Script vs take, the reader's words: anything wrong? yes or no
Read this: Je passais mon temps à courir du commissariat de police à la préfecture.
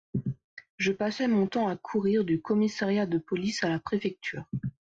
no